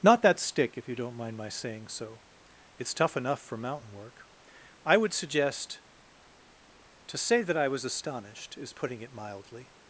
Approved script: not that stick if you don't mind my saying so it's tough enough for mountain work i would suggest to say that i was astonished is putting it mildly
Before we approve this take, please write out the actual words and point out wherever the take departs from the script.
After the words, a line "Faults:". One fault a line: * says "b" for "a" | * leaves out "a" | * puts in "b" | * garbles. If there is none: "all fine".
not that stick if you don't mind my saying so it's tough enough for mountain work i would suggest to say that i was astonished is putting it mildly
Faults:
all fine